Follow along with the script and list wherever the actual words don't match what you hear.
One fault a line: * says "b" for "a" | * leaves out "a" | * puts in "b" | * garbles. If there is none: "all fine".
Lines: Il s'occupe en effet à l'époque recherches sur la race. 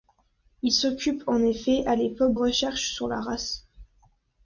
all fine